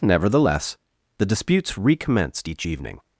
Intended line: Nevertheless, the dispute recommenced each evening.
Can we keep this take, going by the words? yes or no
no